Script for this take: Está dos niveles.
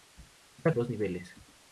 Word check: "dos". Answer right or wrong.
right